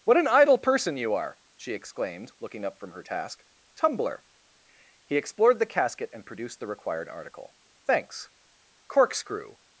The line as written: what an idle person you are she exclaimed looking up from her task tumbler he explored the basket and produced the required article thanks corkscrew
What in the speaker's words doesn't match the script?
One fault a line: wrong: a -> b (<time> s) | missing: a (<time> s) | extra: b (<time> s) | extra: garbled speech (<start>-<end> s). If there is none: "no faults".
wrong: basket -> casket (5.7 s)